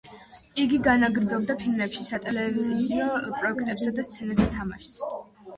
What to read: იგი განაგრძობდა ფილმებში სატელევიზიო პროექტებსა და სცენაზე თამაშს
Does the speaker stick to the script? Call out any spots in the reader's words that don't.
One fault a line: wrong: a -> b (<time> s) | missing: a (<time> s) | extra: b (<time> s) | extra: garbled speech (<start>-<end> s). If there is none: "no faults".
no faults